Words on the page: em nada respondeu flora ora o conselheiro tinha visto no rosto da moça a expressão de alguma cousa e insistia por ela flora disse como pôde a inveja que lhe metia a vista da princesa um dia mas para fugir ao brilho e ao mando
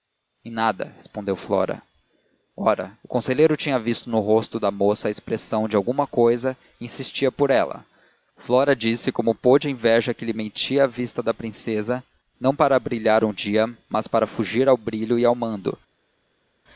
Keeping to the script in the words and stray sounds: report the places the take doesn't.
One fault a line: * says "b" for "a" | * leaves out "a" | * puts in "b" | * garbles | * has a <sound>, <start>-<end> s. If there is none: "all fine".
* puts in "não para brilhar"